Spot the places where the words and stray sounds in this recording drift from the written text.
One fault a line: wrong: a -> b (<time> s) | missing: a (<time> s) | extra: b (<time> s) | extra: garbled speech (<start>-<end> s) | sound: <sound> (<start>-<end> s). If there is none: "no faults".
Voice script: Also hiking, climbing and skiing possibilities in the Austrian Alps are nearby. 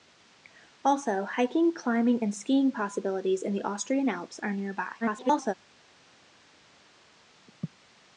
extra: garbled speech (5.0-5.5 s)